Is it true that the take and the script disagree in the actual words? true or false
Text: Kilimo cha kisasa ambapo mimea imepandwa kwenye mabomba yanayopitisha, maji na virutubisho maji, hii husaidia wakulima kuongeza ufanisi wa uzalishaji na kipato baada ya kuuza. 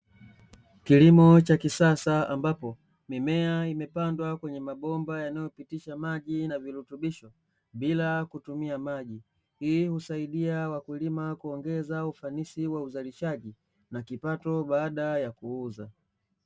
true